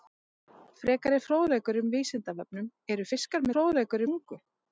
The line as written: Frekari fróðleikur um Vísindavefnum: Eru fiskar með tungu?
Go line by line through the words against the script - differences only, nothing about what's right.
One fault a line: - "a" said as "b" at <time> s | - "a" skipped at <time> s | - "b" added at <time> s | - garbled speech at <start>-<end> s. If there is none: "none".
- "með" said as "fróðleikur" at 3.5 s